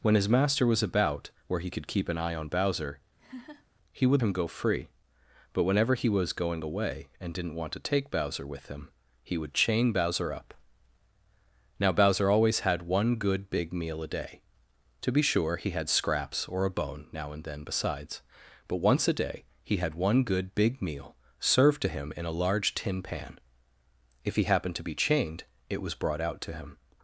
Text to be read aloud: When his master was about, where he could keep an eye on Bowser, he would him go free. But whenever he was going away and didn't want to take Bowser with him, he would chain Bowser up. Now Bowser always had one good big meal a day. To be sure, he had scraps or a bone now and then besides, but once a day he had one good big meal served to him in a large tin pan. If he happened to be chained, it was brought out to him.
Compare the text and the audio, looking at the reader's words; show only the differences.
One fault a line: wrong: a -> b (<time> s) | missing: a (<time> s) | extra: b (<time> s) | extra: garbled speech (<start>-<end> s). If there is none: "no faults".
no faults